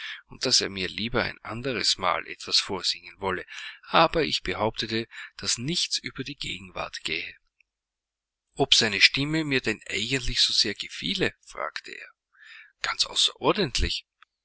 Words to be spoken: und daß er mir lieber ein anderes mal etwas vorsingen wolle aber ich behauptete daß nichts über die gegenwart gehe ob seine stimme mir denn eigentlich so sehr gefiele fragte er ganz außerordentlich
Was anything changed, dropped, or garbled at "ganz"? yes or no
no